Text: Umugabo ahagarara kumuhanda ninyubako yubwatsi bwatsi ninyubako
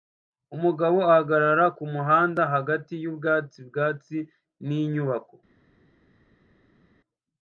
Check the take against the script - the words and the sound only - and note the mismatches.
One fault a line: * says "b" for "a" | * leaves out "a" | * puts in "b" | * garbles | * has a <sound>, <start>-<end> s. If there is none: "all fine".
* says "hagati" for "ninyubako"